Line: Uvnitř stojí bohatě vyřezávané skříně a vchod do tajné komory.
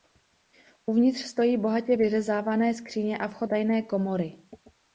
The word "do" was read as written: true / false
false